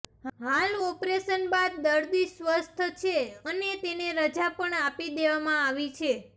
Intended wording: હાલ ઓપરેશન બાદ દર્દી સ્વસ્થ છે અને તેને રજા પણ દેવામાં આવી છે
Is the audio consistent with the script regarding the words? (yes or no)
no